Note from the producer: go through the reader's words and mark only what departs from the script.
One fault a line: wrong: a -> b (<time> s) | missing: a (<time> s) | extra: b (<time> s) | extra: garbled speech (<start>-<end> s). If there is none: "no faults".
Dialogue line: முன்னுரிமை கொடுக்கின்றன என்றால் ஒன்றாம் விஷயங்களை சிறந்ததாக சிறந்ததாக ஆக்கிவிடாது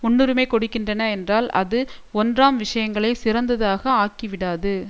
extra: அது (1.6 s)
missing: சிறந்ததாக (3.8 s)